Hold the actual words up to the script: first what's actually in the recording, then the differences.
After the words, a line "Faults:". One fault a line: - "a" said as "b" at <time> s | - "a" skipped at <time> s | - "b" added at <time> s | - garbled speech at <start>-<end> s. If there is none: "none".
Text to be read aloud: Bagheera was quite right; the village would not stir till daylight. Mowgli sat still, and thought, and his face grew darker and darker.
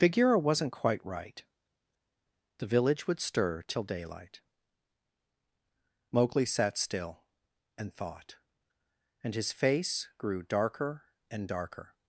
Bagheera wasn't quite right; the village would stir till daylight. Mowgli sat still, and thought, and his face grew darker and darker.
Faults:
- "was" said as "wasn't" at 0.4 s
- "not" skipped at 3.2 s